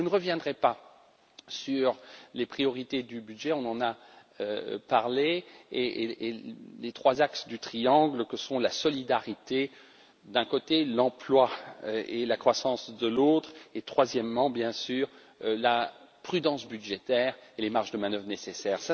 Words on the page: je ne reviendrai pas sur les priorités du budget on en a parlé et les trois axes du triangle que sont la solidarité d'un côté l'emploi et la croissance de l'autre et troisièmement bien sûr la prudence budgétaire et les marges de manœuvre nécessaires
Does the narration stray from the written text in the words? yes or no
no